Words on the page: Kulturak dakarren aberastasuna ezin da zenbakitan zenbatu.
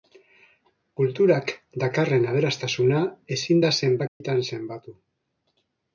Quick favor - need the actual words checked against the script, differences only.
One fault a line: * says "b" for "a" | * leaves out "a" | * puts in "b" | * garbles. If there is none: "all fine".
all fine